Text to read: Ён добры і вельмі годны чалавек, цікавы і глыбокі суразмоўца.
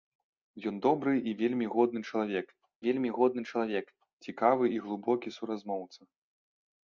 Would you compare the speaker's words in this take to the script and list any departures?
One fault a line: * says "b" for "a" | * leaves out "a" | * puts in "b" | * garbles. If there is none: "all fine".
* puts in "вельмі годны чалавек"